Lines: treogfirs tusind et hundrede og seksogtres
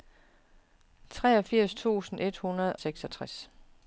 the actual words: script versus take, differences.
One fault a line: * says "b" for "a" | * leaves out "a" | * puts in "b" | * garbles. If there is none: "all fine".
* leaves out "og"